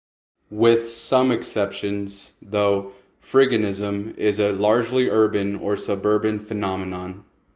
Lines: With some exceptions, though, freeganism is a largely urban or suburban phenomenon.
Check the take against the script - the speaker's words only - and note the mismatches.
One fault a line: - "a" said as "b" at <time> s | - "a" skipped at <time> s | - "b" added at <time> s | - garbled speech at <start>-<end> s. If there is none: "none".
none